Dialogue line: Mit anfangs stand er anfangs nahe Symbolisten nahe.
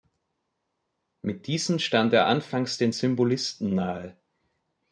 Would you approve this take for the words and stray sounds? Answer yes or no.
no